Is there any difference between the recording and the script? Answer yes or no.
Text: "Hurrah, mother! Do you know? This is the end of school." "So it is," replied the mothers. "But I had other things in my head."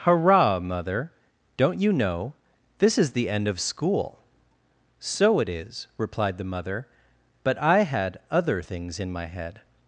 yes